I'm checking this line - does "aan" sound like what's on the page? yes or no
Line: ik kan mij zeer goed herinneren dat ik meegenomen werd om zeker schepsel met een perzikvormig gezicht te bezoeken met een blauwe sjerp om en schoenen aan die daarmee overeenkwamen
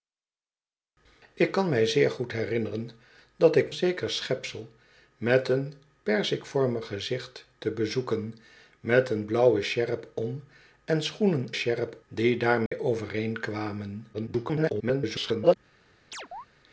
no